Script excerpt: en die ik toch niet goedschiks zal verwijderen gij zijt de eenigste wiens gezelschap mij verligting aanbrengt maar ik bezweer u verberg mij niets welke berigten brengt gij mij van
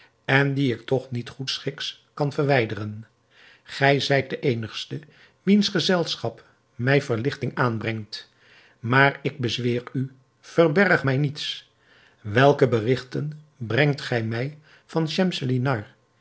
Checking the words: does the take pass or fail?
fail